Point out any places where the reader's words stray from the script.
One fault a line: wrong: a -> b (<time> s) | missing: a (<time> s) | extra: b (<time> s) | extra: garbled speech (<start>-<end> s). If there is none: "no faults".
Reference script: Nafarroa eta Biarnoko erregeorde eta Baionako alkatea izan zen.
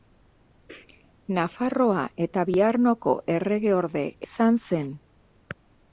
missing: eta Baionako alkatea (4.0 s)